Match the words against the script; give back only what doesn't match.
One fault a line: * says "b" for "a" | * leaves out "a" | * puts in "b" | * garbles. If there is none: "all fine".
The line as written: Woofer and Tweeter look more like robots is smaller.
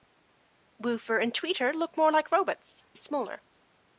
all fine